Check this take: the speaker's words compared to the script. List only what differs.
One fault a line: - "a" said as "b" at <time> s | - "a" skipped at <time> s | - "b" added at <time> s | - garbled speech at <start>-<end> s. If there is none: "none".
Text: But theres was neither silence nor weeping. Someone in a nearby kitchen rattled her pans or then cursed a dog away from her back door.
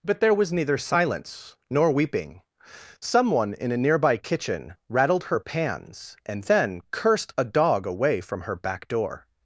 - "theres" said as "there" at 0.2 s
- "or" said as "and" at 6.2 s